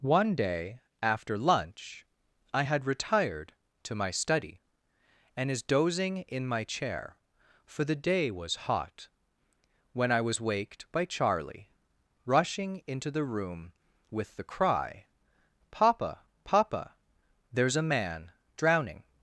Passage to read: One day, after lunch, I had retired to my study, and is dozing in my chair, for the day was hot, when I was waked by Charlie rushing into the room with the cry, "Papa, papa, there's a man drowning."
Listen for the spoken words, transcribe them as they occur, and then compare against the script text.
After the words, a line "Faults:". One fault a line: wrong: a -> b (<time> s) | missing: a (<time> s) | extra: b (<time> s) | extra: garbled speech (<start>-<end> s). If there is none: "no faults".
One day, after lunch, I had retired to my study, and is dozing in my chair, for the day was hot, when I was waked by Charlie rushing into the room with the cry, "Papa, papa, there's a man drowning."
Faults:
no faults